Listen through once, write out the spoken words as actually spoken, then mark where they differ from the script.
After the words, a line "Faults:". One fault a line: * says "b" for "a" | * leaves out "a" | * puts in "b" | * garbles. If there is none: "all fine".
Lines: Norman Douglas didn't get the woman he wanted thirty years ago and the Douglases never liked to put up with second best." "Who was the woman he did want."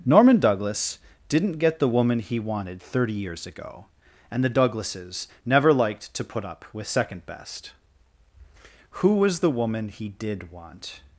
Norman Douglas didn't get the woman he wanted thirty years ago and the Douglases never liked to put up with second best." "Who was the woman he did want."
Faults:
all fine